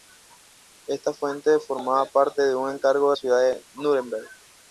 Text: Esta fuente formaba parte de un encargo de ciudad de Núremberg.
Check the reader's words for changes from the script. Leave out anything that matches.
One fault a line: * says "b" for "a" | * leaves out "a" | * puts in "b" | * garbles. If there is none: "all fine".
all fine